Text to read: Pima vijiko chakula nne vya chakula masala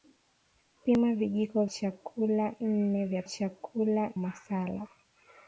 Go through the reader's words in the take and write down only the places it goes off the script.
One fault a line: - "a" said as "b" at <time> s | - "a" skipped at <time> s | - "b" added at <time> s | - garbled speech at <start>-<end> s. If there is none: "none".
none